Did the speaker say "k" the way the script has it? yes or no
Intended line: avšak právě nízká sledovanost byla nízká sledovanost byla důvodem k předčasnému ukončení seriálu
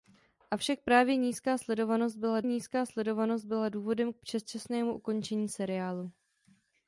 yes